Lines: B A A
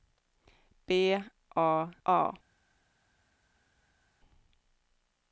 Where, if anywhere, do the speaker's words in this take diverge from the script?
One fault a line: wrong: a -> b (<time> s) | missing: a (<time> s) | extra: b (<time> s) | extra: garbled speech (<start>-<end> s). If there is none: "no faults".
no faults